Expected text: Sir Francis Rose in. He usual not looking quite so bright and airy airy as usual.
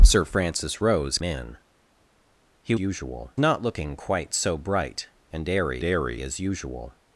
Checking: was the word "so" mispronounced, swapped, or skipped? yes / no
no